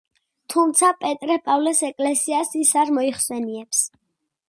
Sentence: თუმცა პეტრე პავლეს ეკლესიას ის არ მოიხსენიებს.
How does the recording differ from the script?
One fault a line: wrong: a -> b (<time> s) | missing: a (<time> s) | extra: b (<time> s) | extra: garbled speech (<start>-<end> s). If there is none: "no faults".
no faults